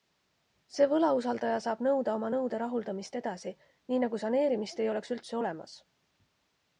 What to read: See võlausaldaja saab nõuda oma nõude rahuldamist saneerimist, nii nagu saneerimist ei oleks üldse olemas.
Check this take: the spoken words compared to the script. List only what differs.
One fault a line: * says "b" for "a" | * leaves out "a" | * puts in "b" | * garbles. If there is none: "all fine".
* says "edasi" for "saneerimist"